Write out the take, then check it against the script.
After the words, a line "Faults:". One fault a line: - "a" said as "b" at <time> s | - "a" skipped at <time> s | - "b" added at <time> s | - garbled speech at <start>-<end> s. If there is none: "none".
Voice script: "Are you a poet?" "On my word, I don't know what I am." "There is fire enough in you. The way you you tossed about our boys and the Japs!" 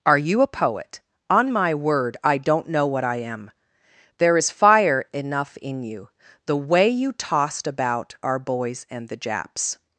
"Are you a poet?" "On my word, I don't know what I am." "There is fire enough in you. The way you tossed about our boys and the Japs!"
Faults:
- "you" skipped at 7.1 s